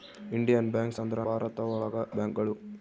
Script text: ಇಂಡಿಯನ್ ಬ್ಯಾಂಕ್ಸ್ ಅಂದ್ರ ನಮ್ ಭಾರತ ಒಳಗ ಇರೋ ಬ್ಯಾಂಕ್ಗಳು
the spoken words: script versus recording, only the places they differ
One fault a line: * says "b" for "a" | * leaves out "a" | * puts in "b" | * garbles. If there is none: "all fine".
* leaves out "ನಮ್"
* leaves out "ಇರೋ"